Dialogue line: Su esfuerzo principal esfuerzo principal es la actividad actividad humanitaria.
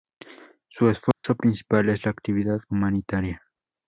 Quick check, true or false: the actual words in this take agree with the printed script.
false